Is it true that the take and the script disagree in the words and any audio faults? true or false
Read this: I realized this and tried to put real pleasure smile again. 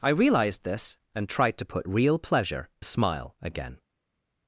false